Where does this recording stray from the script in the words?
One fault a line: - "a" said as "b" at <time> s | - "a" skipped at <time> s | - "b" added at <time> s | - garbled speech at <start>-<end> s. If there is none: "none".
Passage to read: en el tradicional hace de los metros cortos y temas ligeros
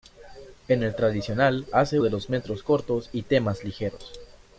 none